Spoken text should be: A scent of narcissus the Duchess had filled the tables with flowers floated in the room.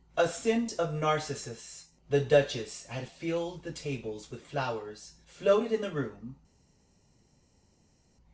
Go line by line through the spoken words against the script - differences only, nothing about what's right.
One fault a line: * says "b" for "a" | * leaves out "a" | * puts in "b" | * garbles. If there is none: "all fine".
all fine